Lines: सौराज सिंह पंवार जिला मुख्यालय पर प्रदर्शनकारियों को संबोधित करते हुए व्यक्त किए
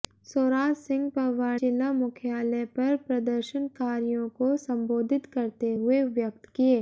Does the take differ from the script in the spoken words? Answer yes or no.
no